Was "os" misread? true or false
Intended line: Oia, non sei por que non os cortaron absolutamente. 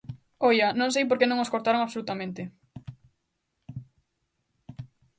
false